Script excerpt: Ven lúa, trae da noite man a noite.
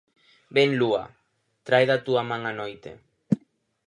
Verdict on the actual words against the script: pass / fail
fail